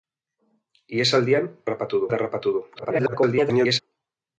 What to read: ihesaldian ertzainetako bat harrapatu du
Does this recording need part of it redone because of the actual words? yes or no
yes